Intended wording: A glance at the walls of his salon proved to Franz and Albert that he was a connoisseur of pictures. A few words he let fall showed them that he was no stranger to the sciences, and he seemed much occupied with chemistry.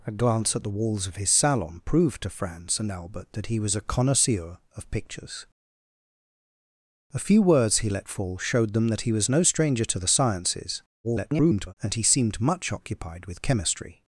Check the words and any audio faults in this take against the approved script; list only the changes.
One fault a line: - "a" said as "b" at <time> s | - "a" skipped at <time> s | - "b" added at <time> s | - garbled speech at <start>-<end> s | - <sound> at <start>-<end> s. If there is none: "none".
- garbled speech at 11.0-11.7 s